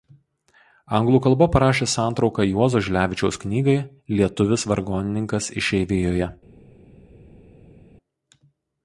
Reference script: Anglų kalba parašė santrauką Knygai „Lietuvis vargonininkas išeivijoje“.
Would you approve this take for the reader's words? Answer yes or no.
no